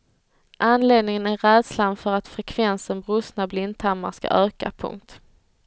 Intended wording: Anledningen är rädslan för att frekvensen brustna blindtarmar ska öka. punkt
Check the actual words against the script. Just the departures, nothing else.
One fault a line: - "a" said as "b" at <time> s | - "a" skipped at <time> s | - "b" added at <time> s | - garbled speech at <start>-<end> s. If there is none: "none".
none